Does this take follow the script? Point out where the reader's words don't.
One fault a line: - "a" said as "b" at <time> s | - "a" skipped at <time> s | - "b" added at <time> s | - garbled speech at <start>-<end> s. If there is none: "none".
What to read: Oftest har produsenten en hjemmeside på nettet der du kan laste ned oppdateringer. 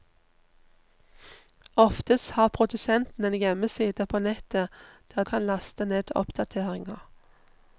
- "du" skipped at 5.2 s